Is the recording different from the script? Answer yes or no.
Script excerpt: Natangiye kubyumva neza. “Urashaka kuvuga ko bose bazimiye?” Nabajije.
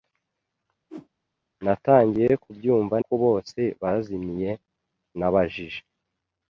yes